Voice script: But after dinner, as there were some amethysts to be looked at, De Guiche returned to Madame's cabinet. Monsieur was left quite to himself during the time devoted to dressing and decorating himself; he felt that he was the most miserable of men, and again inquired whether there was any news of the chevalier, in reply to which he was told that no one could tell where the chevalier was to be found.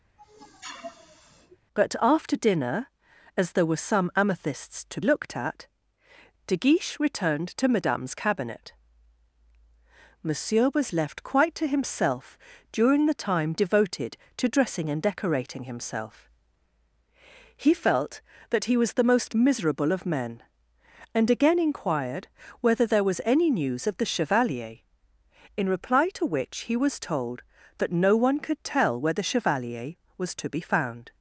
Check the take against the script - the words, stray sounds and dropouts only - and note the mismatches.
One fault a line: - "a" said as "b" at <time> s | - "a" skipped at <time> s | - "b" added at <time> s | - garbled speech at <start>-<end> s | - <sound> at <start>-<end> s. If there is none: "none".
- sniff at 0.2-1.6 s
- "be" skipped at 5.0 s